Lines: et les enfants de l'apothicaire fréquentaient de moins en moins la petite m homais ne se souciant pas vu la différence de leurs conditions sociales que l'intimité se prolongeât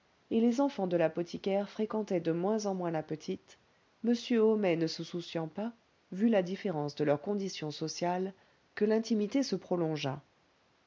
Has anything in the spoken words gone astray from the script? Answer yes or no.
no